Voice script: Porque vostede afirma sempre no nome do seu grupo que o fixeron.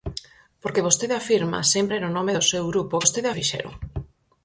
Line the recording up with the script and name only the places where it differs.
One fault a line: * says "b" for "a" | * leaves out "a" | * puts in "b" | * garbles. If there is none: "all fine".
* says "vostede" for "que"